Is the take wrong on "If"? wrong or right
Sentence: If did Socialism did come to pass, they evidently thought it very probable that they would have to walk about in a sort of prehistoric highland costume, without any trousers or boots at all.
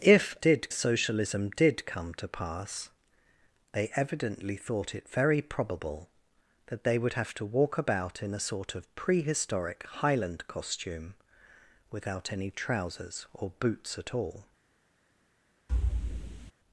right